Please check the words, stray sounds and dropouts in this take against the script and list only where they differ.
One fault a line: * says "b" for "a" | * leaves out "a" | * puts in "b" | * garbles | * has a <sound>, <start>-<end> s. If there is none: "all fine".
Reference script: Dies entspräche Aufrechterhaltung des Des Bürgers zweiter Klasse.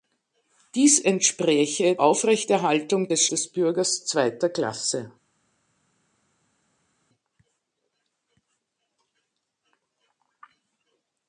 all fine